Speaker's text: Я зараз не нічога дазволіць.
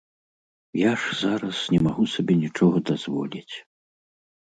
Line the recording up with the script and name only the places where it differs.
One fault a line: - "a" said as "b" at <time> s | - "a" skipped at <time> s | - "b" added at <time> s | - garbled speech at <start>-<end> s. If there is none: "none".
- "ж" added at 1.0 s
- "магу сабе" added at 1.9 s